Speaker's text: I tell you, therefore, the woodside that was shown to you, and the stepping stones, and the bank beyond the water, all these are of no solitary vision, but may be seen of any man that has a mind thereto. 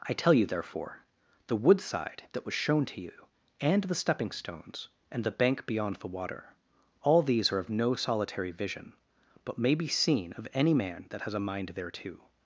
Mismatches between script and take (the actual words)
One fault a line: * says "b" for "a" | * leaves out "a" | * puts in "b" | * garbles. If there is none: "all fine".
all fine